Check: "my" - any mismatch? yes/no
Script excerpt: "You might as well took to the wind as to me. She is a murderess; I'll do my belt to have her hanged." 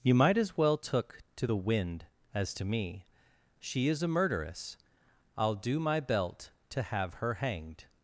no